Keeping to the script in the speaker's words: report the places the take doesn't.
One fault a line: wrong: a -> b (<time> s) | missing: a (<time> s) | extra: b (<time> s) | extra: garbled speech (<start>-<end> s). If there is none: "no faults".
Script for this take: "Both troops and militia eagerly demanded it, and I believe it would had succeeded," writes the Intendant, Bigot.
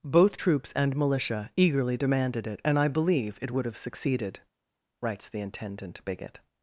wrong: had -> have (3.7 s)